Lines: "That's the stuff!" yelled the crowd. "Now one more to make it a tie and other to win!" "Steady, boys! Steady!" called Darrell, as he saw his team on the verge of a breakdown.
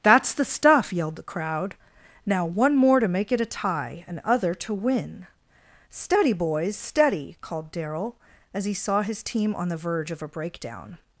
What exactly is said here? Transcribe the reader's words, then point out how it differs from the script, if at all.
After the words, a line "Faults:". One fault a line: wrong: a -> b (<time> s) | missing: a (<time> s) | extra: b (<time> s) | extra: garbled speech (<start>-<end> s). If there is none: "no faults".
"That's the stuff!" yelled the crowd. "Now one more to make it a tie and other to win!" "Steady, boys! Steady!" called Darrell, as he saw his team on the verge of a breakdown.
Faults:
no faults